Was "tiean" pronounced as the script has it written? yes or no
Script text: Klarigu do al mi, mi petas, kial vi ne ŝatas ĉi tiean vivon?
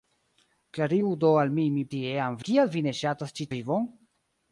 no